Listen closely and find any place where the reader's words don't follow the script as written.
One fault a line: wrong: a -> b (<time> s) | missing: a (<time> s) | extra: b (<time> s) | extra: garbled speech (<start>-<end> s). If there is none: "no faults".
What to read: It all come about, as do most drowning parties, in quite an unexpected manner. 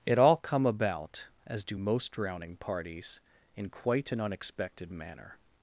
no faults